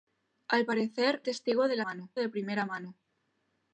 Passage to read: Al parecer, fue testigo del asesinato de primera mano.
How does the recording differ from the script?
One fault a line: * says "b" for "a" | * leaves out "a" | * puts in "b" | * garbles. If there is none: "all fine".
* leaves out "fue"
* says "mano" for "asesinato"